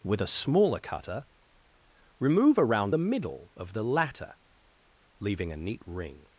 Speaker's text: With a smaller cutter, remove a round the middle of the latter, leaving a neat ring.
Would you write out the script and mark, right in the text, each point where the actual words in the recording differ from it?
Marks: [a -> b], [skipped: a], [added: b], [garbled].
With a smaller cutter, remove a round the middle of the latter, leaving a neat ring.